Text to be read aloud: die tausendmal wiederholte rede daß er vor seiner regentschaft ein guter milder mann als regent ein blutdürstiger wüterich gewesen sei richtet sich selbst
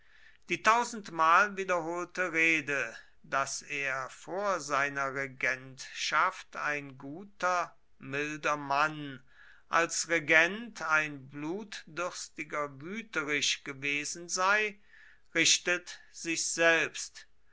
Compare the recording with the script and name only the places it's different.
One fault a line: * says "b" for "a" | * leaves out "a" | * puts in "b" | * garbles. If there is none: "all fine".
all fine